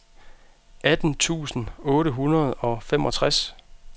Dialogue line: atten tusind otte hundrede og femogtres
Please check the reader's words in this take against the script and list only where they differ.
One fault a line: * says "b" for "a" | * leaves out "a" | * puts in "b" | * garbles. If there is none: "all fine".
all fine